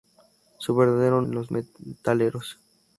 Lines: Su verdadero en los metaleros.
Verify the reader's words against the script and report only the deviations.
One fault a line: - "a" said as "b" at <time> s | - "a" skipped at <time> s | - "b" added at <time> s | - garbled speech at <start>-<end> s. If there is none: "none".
none